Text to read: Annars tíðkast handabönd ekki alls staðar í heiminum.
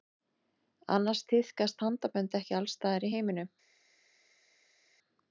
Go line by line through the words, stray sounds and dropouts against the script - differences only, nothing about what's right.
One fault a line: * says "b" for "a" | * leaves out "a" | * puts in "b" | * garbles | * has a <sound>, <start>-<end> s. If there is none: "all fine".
all fine